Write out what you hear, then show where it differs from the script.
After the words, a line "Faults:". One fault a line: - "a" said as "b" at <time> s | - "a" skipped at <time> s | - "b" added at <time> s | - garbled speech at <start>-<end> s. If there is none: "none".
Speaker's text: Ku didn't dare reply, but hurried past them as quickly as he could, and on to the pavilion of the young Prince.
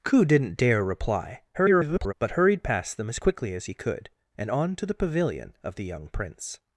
Ku didn't dare reply, [garbled] but hurried past them as quickly as he could, and on to the pavilion of the young Prince.
Faults:
- garbled speech at 1.5-2.1 s